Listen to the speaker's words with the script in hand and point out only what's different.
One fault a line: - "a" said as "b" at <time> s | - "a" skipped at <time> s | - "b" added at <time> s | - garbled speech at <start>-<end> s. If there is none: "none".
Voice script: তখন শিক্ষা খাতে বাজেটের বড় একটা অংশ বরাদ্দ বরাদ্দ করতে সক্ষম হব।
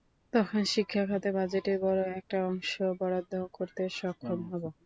- "বরাদ্দ" skipped at 3.3 s